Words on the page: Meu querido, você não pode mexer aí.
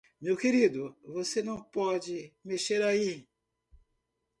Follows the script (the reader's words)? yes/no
yes